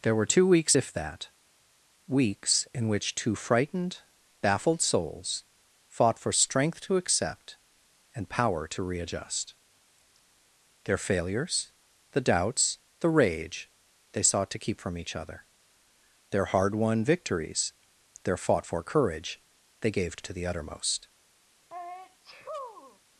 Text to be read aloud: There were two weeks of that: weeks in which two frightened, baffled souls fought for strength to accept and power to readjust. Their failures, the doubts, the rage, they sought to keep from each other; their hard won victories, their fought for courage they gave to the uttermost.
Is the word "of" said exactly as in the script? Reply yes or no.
no